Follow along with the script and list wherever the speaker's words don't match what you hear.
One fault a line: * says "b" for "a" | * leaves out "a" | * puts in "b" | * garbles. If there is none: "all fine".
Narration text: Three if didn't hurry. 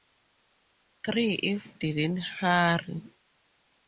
all fine